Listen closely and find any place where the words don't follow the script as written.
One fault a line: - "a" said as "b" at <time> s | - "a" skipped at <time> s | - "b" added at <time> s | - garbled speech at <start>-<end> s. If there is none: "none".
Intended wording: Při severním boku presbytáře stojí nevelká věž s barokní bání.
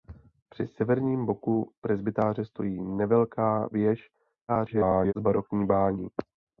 - garbled speech at 4.5-5.1 s